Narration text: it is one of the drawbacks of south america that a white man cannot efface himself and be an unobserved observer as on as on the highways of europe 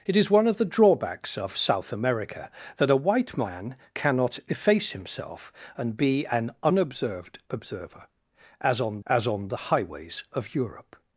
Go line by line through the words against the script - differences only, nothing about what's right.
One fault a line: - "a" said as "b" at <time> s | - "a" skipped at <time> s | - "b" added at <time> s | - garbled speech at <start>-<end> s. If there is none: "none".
none